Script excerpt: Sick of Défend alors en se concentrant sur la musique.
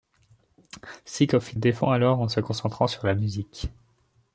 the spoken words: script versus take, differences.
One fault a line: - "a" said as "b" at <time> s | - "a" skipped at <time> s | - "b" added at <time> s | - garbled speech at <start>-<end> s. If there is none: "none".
none